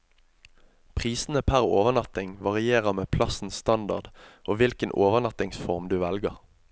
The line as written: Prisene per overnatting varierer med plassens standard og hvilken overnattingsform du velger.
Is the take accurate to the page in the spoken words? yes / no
yes